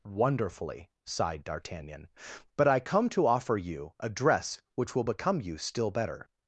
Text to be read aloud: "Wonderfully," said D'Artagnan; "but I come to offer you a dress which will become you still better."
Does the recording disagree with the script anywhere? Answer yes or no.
yes